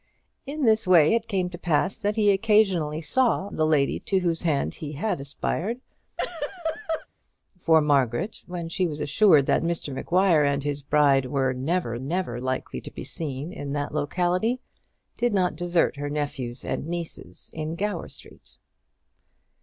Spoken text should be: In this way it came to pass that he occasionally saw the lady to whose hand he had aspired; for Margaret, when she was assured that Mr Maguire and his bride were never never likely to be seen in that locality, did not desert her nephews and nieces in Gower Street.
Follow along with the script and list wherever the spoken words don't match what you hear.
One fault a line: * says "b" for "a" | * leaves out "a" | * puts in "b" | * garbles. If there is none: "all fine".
all fine